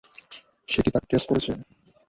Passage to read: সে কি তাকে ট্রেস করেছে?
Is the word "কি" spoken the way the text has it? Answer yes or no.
yes